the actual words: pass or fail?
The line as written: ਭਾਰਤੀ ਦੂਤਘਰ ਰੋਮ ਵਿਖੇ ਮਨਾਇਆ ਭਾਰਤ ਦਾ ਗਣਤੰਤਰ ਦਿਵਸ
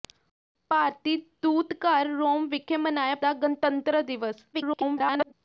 fail